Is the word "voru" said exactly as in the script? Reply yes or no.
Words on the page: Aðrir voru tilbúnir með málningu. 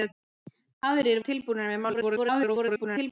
no